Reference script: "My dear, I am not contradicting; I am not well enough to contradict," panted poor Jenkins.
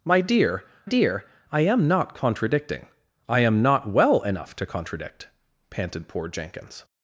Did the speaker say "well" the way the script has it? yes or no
yes